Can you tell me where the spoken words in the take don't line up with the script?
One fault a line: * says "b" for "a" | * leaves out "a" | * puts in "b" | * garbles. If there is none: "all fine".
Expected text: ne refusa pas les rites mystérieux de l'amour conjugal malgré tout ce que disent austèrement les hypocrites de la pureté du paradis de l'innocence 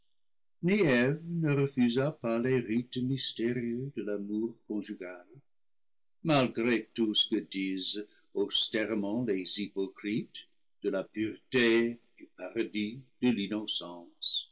all fine